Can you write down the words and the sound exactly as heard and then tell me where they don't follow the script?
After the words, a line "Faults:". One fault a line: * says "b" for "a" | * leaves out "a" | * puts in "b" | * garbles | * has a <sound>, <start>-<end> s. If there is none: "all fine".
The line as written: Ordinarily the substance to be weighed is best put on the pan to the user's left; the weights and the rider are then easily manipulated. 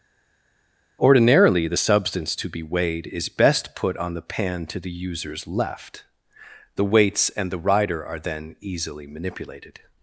Ordinarily the substance to be weighed is best put on the pan to the user's left; the weights and the rider are then easily manipulated.
Faults:
all fine